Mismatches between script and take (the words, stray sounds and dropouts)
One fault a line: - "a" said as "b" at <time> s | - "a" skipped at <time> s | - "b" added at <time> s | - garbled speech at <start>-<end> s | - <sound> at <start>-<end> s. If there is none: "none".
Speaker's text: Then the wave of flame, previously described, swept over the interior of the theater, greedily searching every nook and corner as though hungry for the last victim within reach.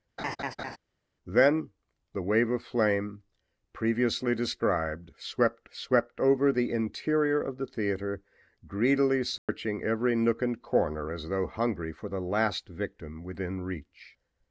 - laugh at 0.2-0.8 s
- "swept" added at 5.7 s
- dropout at 9.4-9.5 s